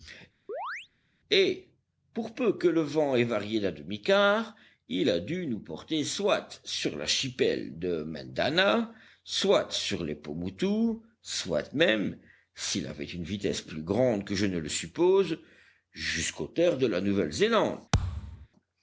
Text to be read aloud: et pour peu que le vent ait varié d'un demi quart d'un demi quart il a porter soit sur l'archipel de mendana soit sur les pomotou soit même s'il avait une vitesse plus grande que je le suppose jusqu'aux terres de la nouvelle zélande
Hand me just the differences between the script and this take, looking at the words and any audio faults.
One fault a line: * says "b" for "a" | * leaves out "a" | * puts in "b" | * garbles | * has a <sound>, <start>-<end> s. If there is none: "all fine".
* has a chirp, 0.5-0.9 s
* says "il a dû nous" for "d'un demi quart il a"
* puts in "ne"
* has a thud, 17.9-18.5 s